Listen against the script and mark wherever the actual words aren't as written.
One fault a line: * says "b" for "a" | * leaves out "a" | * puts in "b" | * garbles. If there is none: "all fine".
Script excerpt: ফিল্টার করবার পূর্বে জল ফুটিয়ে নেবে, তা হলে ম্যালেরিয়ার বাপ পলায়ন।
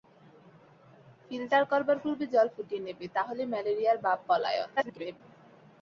* garbles